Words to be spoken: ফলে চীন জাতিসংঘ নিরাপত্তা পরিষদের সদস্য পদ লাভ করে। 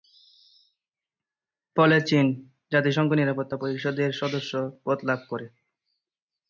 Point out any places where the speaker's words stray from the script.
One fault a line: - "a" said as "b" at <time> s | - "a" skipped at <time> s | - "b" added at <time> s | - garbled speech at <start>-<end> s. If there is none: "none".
none